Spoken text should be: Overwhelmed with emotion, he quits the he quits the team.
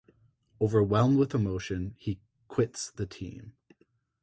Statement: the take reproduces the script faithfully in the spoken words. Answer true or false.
false